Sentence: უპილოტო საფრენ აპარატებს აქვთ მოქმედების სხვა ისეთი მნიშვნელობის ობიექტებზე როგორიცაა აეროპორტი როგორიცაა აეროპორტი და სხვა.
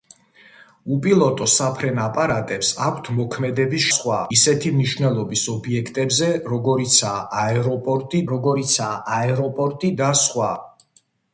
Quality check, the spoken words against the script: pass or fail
pass